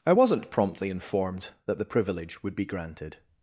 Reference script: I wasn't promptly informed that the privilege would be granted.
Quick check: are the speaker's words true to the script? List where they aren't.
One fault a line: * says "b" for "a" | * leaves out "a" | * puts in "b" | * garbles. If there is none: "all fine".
all fine